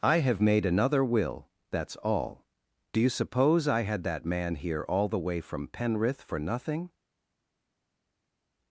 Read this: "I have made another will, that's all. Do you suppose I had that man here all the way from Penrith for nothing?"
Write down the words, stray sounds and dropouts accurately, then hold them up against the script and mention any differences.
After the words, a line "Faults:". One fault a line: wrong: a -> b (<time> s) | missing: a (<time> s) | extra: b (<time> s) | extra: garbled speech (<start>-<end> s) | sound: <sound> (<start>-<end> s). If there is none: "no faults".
"I have made another will, that's all. Do you suppose I had that man here all the way from Penrith for nothing?"
Faults:
no faults